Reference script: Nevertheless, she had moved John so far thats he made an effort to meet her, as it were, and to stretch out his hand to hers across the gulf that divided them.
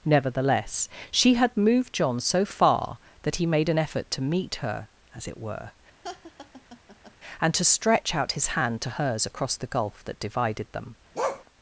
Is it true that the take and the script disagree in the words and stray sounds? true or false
true